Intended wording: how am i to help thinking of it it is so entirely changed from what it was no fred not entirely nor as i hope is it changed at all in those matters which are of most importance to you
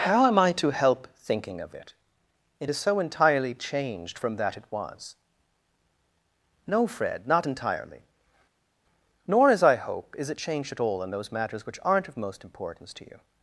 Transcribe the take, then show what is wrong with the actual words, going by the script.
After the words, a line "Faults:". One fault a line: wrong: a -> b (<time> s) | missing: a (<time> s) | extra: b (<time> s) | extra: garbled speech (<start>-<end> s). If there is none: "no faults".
how am i to help thinking of it it is so entirely changed from that it was no fred not entirely nor as i hope is it changed at all in those matters which aren't of most importance to you
Faults:
wrong: what -> that (4.4 s)
wrong: are -> aren't (11.8 s)